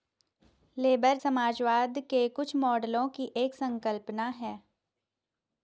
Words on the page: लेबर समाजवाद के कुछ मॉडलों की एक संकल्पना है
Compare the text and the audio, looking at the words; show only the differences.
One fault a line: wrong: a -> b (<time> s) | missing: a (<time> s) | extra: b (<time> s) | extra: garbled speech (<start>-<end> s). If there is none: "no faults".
no faults